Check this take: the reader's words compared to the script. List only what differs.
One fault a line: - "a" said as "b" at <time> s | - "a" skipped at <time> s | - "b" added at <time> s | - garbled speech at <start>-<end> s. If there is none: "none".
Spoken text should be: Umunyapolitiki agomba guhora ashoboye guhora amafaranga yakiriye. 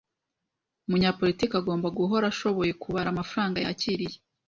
- "guhora" said as "kubara" at 2.8 s